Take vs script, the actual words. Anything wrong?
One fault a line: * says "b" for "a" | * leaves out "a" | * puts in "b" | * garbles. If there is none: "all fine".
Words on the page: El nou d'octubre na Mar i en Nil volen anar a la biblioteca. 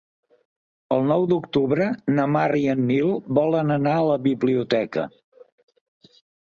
all fine